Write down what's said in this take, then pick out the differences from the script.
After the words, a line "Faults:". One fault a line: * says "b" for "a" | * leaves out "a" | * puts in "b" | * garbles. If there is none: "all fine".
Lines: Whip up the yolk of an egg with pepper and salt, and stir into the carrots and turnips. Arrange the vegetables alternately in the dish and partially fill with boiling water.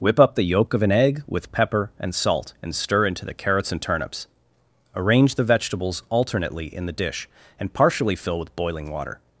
Whip up the yolk of an egg with pepper and salt, and stir into the carrots and turnips. Arrange the vegetables alternately in the dish and partially fill with boiling water.
Faults:
all fine